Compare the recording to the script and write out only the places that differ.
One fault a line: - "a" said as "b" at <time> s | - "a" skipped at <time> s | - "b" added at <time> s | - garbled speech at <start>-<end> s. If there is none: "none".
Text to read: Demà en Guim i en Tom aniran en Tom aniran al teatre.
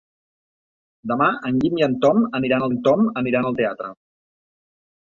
none